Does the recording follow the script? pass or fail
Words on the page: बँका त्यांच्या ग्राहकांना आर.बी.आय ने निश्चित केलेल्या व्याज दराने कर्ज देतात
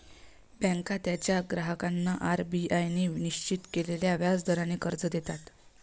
pass